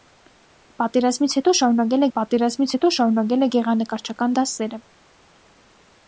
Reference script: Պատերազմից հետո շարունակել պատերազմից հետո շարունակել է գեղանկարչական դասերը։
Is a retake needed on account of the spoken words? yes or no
no